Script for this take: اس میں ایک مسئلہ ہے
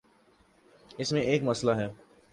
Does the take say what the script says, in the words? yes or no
yes